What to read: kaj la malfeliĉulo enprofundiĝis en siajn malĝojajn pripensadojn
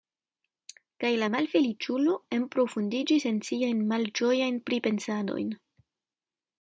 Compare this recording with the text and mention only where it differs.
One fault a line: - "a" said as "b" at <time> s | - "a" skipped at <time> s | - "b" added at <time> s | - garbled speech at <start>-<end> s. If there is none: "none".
none